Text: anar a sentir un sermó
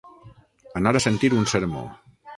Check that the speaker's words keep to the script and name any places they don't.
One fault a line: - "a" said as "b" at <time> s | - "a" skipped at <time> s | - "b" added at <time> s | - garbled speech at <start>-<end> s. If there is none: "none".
none